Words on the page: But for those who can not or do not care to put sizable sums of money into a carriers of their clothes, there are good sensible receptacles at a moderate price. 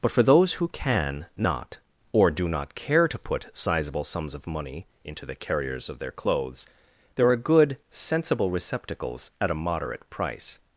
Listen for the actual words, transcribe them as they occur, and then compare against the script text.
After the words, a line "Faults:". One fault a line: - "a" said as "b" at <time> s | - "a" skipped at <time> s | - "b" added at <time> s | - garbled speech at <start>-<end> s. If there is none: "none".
But for those who can not or do not care to put sizable sums of money into the carriers of their clothes, there are good sensible receptacles at a moderate price.
Faults:
- "a" said as "the" at 5.3 s